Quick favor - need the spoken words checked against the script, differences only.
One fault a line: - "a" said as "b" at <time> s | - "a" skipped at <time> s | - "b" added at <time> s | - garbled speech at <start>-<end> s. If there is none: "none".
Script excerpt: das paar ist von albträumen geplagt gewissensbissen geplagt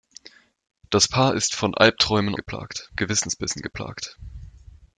none